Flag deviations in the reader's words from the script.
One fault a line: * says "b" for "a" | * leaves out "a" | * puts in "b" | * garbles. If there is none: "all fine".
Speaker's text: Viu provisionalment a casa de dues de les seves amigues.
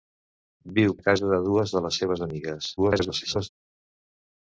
* leaves out "provisionalment"
* garbles